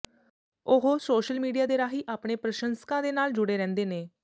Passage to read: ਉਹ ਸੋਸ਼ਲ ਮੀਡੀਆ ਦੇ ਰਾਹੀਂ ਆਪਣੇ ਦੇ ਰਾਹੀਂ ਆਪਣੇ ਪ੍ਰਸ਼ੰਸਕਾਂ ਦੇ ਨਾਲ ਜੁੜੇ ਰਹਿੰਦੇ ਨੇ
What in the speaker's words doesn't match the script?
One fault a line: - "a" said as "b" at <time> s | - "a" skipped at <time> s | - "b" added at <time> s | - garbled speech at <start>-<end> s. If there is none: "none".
- "ਦੇ ਰਾਹੀਂ ਆਪਣੇ" skipped at 2.3 s